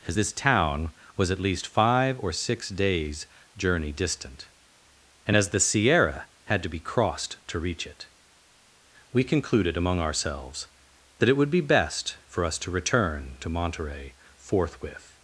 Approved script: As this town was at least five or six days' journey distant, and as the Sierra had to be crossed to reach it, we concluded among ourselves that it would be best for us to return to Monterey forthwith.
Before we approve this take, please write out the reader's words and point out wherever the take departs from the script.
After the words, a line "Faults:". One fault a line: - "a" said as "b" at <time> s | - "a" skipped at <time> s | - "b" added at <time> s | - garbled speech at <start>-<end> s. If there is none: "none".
As this town was at least five or six days' journey distant, and as the Sierra had to be crossed to reach it, we concluded among ourselves that it would be best for us to return to Monterey forthwith.
Faults:
none